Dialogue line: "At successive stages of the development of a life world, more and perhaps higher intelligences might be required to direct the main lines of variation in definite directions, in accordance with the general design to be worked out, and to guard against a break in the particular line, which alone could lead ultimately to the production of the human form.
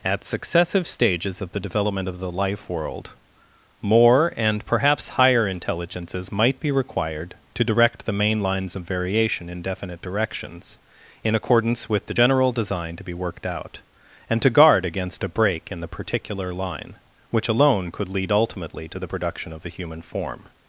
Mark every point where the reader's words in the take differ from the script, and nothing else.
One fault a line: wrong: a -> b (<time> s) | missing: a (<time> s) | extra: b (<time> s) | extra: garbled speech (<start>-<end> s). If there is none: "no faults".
wrong: a -> the (2.2 s)